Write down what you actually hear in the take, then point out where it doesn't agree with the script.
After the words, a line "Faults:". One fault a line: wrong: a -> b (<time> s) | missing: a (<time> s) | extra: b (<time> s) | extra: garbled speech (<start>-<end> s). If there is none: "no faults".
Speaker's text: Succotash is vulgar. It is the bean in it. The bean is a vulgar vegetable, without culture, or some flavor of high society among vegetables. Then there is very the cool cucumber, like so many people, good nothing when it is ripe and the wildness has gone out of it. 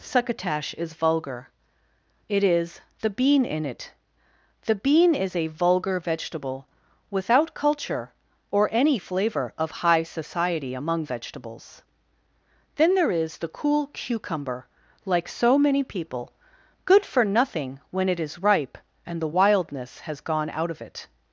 Succotash is vulgar. It is the bean in it. The bean is a vulgar vegetable, without culture, or any flavor of high society among vegetables. Then there is the cool cucumber, like so many people, good for nothing when it is ripe and the wildness has gone out of it.
Faults:
wrong: some -> any (8.7 s)
missing: very (13.4 s)
extra: for (17.0 s)